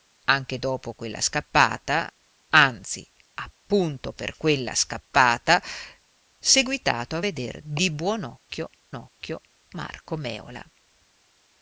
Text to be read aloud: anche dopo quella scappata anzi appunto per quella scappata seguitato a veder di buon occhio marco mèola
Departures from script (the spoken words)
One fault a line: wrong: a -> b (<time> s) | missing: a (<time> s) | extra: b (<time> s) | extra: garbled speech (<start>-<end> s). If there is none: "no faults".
extra: occhio (8.9 s)